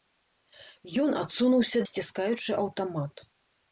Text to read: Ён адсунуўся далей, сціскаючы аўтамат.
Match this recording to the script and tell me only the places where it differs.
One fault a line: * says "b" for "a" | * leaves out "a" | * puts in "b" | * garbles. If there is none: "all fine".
* leaves out "далей"